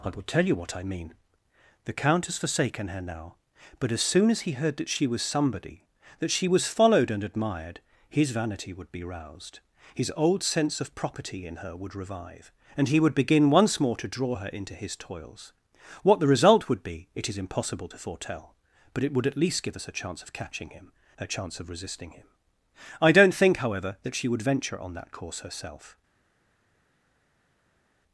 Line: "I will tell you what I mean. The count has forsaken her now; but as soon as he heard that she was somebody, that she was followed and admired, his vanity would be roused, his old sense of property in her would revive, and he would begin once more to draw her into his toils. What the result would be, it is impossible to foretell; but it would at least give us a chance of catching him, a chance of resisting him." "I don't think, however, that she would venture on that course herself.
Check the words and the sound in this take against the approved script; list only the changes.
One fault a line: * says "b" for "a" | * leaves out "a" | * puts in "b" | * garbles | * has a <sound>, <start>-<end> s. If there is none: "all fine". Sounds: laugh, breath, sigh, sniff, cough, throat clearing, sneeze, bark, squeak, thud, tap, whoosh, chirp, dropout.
all fine